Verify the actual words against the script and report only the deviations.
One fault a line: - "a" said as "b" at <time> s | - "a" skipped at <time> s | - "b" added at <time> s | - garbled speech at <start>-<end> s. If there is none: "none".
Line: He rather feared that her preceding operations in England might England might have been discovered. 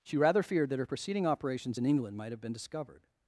- "He" said as "She" at 0.0 s
- "England might" skipped at 2.3 s